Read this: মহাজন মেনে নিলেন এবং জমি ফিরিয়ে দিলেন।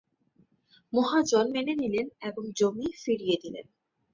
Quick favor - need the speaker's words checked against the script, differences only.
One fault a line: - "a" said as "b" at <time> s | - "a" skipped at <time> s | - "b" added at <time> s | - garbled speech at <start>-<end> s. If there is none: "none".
none